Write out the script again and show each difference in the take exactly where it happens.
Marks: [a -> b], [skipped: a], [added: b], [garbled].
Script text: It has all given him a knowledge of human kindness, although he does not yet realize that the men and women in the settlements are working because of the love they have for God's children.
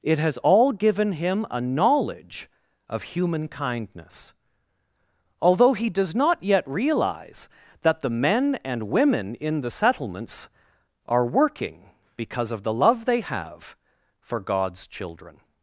It has all given him a knowledge of human kindness, although he does not yet realize that the men and women in the settlements are working because of the love they have for God's children.